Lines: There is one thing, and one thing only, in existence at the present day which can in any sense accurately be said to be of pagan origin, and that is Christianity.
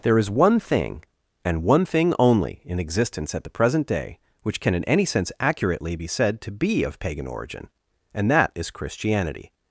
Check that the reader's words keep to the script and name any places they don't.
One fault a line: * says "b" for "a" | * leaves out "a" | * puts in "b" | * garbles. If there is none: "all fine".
all fine